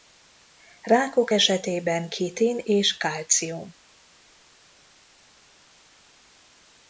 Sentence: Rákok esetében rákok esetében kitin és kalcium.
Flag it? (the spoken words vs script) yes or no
yes